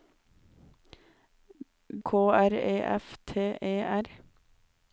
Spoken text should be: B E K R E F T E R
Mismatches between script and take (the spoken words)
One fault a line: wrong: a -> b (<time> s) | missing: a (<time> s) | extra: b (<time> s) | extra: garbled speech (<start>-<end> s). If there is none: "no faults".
missing: E (2.0 s)